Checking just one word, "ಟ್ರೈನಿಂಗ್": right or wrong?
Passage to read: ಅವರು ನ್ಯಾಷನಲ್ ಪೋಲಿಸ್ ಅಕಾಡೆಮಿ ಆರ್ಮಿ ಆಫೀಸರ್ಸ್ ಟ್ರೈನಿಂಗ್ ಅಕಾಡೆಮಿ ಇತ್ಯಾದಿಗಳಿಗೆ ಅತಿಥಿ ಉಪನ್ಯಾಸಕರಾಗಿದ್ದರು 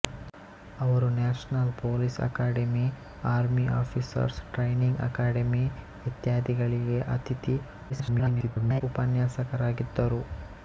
right